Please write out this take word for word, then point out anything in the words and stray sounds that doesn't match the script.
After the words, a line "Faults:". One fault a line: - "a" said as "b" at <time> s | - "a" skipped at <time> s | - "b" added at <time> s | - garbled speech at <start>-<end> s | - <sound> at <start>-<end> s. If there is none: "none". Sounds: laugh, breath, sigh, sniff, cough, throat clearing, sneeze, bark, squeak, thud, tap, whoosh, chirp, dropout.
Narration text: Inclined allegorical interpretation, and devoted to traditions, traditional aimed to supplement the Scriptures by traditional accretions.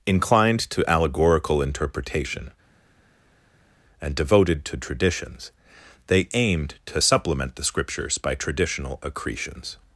Inclined to allegorical interpretation, and devoted to traditions, they aimed to supplement the Scriptures by traditional accretions.
Faults:
- "to" added at 0.7 s
- "traditional" said as "they" at 6.1 s